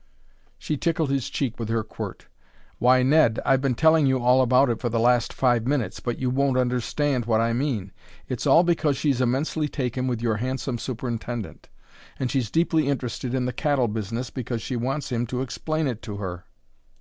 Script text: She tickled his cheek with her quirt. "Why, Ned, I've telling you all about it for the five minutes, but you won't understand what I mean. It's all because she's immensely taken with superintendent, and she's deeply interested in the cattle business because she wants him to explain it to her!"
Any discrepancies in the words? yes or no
yes